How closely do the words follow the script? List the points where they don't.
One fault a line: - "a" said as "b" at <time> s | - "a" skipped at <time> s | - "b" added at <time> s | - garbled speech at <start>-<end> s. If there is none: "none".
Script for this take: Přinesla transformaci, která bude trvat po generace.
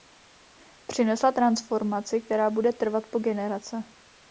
none